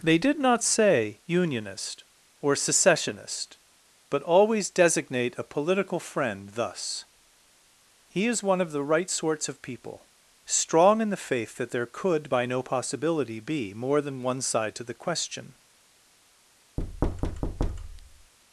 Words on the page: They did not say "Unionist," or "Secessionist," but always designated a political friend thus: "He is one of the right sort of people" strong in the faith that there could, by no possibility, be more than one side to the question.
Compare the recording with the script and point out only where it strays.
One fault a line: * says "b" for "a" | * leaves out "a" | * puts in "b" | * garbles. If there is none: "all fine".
* says "designate" for "designated"
* says "sorts" for "sort"